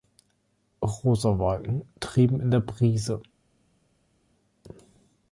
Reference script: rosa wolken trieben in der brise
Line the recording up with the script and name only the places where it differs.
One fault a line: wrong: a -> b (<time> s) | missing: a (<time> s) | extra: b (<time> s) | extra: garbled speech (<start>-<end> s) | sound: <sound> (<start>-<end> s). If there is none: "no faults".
no faults